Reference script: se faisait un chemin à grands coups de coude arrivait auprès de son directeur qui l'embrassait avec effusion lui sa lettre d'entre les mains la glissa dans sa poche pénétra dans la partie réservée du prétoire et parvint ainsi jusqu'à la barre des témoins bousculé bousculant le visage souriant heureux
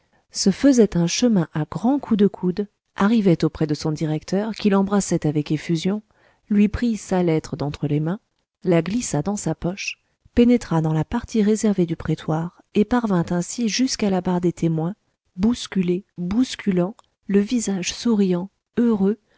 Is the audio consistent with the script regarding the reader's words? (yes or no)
no